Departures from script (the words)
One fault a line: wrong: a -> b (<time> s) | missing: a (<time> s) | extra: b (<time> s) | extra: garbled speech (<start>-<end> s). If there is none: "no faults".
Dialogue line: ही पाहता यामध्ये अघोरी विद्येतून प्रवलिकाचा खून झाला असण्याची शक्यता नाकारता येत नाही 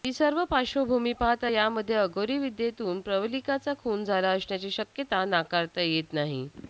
extra: सर्व पार्श्वभूमी (0.1 s)